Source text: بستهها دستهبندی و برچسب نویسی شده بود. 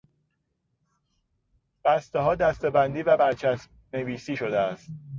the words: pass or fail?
fail